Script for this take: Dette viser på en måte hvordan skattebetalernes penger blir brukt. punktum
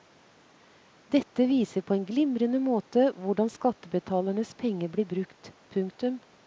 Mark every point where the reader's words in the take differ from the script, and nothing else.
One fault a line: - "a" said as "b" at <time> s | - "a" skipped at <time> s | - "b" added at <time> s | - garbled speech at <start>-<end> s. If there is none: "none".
- "glimrende" added at 2.1 s